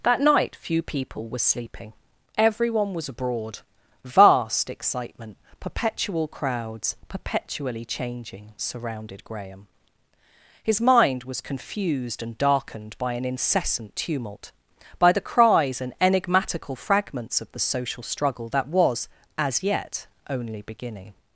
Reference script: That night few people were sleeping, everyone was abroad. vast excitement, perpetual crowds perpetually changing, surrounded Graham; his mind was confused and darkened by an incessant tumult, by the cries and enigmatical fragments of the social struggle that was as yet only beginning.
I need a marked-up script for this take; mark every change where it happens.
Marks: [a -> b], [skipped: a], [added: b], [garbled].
That night few people were sleeping, everyone was abroad. vast excitement, perpetual crowds perpetually changing, surrounded Graham; his mind was confused and darkened by an incessant tumult, by the cries and enigmatical fragments of the social struggle that was as yet only beginning.